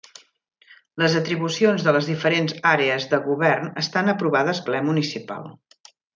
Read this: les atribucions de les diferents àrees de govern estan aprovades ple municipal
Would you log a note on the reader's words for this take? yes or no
no